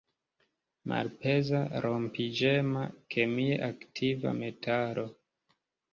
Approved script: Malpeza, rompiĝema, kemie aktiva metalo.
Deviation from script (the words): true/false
false